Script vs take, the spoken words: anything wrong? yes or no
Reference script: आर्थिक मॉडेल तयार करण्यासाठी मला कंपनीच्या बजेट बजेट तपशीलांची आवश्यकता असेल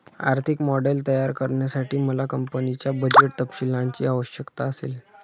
yes